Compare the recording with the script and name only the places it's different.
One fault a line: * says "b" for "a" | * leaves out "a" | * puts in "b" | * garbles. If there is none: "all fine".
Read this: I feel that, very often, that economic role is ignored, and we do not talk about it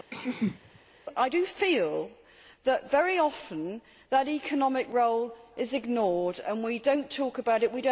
all fine